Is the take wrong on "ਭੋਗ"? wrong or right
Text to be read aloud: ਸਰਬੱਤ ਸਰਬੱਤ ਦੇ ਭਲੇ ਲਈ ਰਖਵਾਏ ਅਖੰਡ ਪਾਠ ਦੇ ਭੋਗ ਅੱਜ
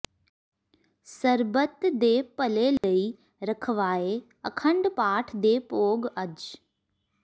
right